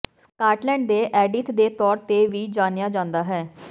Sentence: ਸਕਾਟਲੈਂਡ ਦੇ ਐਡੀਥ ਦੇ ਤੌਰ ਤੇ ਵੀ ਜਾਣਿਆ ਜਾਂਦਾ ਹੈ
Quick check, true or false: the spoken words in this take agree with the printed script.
true